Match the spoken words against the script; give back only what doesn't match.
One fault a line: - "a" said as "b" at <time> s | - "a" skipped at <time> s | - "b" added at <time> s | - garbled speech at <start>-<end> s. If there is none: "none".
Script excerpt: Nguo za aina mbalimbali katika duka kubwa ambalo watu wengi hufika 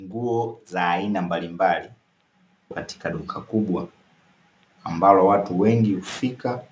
none